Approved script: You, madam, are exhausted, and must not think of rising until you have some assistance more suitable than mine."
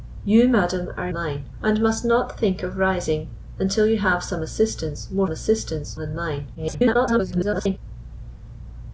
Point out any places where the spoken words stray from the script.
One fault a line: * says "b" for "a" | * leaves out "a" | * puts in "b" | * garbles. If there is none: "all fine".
* says "mine" for "exhausted"
* says "assistance" for "suitable"
* garbles